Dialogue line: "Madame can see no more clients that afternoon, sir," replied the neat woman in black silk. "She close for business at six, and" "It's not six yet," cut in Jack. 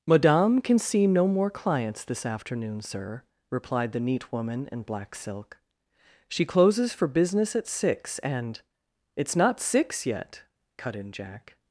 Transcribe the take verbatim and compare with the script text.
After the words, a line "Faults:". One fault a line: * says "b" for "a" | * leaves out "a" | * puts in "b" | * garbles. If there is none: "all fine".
"Madame can see no more clients this afternoon, sir," replied the neat woman in black silk. "She closes for business at six, and" "It's not six yet," cut in Jack.
Faults:
* says "this" for "that"
* says "closes" for "close"